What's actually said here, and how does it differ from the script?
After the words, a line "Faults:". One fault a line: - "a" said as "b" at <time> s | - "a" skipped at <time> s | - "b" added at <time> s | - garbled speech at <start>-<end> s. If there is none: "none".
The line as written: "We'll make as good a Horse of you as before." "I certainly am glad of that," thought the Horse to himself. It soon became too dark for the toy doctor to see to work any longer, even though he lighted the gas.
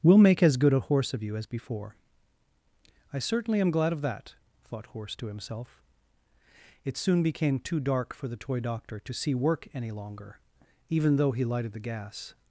"We'll make as good a Horse of you as before." "I certainly am glad of that," thought Horse to himself. It soon became too dark for the toy doctor to see work any longer, even though he lighted the gas.
Faults:
- "the" skipped at 4.9 s
- "to" skipped at 9.3 s